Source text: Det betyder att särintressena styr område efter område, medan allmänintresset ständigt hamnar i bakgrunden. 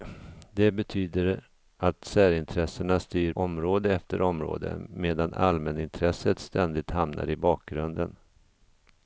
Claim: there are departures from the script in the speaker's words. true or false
false